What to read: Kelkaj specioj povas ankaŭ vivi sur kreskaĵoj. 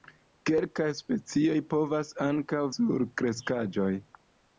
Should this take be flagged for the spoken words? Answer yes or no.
yes